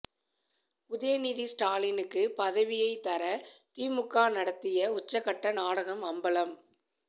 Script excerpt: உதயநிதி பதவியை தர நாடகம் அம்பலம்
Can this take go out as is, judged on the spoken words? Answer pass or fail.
fail